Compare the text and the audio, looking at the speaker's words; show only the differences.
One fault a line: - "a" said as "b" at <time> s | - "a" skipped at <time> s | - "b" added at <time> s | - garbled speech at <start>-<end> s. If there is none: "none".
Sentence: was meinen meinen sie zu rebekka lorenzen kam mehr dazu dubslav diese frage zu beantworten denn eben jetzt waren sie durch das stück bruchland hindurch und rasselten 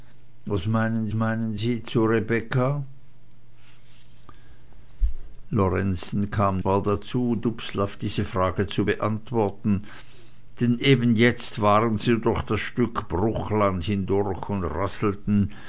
none